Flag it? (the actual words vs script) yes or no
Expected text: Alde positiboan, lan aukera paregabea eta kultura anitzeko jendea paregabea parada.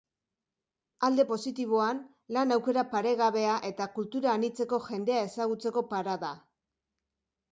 yes